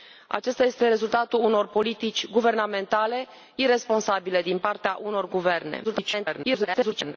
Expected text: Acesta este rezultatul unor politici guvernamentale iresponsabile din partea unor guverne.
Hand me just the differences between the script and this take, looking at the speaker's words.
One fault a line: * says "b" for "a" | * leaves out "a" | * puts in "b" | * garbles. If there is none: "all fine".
* garbles